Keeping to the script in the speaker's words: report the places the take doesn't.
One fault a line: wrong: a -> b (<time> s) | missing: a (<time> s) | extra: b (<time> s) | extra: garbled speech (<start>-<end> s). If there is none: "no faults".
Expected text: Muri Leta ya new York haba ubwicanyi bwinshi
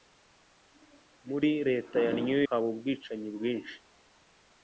missing: York (2.4 s)